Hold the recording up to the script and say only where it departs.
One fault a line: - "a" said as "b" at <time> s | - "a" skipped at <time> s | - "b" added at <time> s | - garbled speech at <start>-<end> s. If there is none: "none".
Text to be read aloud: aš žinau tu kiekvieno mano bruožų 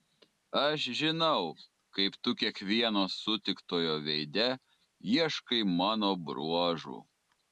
- "kaip" added at 1.9 s
- "sutiktojo veide ieškai" added at 3.2 s